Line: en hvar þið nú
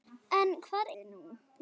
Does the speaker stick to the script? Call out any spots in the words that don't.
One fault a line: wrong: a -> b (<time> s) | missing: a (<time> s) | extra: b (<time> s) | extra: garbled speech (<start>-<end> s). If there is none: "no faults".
no faults